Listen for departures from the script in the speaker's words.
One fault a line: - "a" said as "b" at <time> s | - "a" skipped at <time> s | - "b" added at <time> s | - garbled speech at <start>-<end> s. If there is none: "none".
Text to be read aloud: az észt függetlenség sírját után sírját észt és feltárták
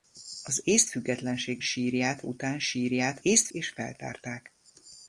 none